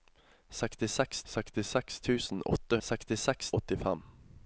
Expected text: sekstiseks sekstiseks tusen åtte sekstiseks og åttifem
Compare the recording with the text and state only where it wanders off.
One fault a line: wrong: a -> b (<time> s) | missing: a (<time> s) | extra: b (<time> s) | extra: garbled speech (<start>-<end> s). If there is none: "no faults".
no faults